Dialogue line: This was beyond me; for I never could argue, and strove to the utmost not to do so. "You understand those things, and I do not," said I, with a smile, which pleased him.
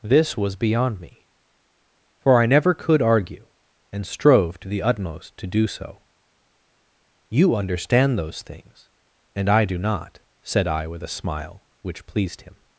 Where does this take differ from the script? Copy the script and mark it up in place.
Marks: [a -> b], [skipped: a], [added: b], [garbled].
This was beyond me; for I never could argue, and strove to the utmost [skipped: not] to do so. "You understand those things, and I do not," said I, with a smile, which pleased him.